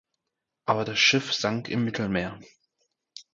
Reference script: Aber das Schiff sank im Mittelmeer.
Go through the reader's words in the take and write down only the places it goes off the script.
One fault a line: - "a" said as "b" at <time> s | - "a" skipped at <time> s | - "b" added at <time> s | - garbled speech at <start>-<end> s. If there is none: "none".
none